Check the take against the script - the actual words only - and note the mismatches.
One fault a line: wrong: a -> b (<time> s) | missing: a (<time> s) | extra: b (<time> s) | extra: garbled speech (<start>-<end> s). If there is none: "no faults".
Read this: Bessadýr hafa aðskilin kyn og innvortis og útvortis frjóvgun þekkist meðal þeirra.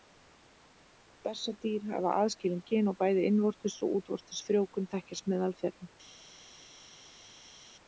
extra: bæði (3.0 s)